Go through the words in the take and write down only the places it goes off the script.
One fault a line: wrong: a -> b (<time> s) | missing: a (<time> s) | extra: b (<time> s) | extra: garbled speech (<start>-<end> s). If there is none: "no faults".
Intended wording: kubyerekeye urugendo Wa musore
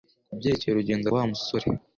no faults